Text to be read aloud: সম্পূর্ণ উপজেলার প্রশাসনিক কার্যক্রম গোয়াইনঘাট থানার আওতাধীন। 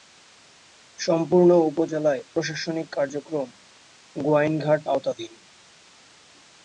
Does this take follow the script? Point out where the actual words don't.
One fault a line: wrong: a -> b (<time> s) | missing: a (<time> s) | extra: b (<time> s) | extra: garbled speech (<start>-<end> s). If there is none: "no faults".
missing: থানার (4.8 s)